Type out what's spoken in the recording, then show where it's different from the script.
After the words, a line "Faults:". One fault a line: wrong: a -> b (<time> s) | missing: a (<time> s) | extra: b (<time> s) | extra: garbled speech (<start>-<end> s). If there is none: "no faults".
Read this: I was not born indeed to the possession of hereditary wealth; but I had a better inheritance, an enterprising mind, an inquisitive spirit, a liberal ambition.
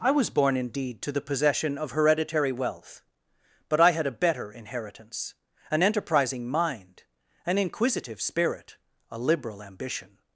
I was born indeed to the possession of hereditary wealth; but I had a better inheritance, an enterprising mind, an inquisitive spirit, a liberal ambition.
Faults:
missing: not (0.3 s)